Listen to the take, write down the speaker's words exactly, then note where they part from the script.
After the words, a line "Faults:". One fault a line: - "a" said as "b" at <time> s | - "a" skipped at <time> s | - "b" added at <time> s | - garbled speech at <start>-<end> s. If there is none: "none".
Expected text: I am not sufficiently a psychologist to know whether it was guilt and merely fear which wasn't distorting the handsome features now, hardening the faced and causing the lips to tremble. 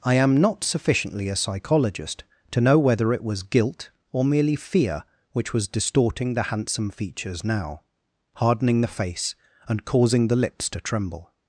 I am not sufficiently a psychologist to know whether it was guilt or merely fear which was distorting the handsome features now, hardening the face and causing the lips to tremble.
Faults:
- "and" said as "or" at 4.1 s
- "wasn't" said as "was" at 5.5 s
- "faced" said as "face" at 8.9 s